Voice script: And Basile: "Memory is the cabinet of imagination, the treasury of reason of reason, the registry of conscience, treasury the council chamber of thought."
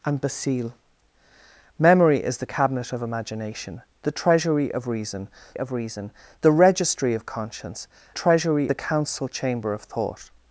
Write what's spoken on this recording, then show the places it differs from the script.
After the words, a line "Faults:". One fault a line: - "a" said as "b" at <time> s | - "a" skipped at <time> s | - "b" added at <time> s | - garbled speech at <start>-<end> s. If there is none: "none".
And Basile: "Memory is the cabinet of imagination, the treasury of reason of reason, the registry of conscience, treasury the council chamber of thought."
Faults:
none